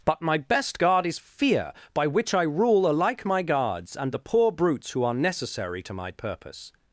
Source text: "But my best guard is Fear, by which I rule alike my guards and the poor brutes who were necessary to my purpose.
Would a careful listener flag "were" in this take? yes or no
yes